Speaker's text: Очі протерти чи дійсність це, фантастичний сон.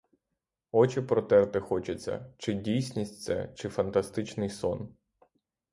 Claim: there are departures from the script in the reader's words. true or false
true